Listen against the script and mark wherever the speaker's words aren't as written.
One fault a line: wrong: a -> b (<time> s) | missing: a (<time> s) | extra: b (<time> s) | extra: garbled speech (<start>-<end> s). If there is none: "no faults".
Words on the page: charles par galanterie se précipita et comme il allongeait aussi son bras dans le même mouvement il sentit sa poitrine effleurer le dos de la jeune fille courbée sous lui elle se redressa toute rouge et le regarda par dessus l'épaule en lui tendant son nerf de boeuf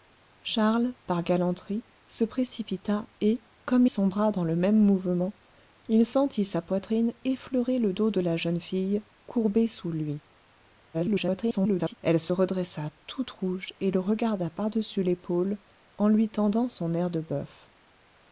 missing: il allongeait aussi (3.9 s)
extra: garbled speech (10.9-11.9 s)